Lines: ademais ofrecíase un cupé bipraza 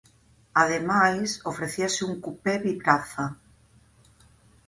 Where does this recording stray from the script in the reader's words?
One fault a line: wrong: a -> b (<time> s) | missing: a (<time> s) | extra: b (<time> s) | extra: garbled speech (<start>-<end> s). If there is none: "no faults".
no faults